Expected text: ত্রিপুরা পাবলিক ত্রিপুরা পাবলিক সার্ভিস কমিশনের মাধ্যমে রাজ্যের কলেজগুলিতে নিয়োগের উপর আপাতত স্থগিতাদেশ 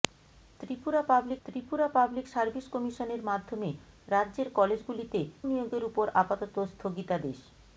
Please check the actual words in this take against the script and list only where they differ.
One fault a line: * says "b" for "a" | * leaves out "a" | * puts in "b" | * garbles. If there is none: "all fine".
all fine